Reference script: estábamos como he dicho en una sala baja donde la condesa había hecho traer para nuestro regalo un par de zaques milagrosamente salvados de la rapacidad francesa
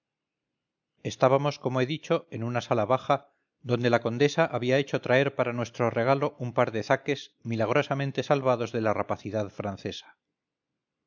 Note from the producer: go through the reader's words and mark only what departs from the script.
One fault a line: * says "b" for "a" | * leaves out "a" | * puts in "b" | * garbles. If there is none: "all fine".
all fine